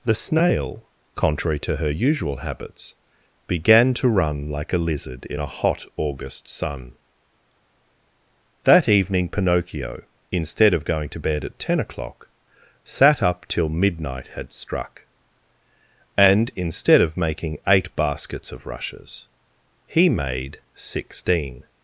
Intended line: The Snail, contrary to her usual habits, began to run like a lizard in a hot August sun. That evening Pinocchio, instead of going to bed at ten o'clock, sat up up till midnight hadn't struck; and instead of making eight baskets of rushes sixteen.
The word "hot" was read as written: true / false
true